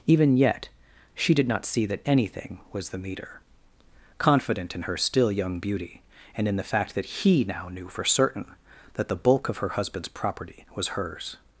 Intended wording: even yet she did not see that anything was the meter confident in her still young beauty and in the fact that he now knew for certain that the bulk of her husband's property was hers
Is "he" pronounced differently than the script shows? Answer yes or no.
no